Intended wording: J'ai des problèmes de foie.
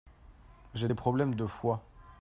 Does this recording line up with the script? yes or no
yes